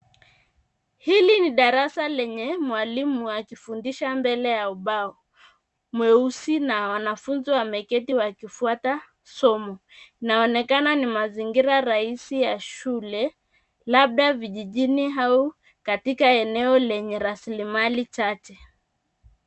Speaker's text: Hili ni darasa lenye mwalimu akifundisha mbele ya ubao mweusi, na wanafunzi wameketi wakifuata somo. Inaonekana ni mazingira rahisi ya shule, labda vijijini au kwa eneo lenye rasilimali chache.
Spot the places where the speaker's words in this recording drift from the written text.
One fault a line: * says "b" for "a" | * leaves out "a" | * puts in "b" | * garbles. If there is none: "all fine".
* says "katika" for "kwa"